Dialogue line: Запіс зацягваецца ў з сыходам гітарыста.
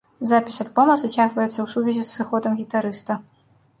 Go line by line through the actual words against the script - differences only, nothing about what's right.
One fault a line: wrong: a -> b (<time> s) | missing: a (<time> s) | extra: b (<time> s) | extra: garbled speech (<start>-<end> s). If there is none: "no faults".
extra: альбома (0.6 s)
extra: сувязі (1.7 s)